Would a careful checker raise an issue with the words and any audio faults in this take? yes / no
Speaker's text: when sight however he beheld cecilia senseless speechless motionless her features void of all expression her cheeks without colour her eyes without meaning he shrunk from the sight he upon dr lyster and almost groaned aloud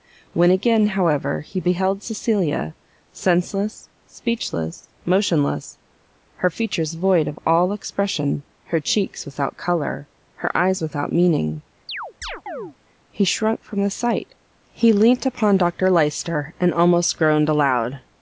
yes